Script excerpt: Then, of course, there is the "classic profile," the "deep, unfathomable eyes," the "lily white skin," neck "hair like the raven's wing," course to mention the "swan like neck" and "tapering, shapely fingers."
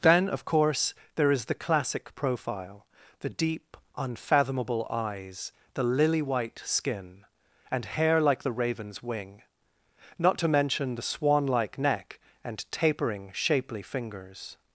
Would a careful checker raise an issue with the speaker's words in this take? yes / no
yes